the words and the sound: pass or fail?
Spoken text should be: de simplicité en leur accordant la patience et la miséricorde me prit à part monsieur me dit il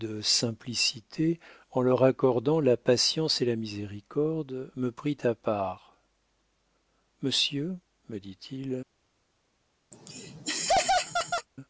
fail